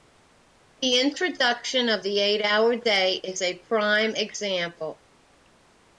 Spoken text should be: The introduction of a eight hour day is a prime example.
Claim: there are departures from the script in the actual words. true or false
true